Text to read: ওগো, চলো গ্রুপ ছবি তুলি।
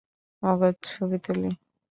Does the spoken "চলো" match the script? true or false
false